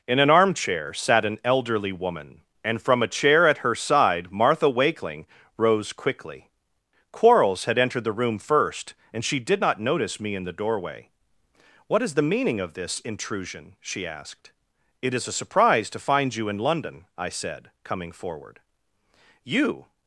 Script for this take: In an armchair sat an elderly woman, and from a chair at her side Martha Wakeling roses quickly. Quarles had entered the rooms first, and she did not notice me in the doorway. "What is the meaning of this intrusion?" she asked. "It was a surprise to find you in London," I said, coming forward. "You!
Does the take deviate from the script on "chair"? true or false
false